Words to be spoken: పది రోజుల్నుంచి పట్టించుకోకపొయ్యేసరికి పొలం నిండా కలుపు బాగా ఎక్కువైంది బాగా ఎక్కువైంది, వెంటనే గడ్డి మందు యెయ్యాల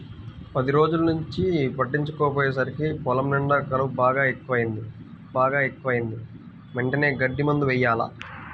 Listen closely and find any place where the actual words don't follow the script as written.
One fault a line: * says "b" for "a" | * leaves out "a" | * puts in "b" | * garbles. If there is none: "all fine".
all fine